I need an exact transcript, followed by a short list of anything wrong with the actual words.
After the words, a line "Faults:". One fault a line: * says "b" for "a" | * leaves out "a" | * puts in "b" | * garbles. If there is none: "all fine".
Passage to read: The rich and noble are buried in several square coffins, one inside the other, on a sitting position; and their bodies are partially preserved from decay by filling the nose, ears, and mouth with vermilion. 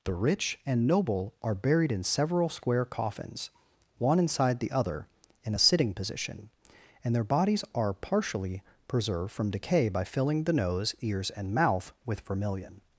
The rich and noble are buried in several square coffins, one inside the other, in a sitting position; and their bodies are partially preserved from decay by filling the nose, ears, and mouth with vermilion.
Faults:
* says "in" for "on"